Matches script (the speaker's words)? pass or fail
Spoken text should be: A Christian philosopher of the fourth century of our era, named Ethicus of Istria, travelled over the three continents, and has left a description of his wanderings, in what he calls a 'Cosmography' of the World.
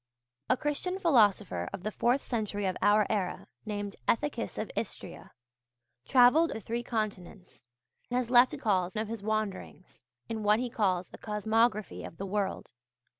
fail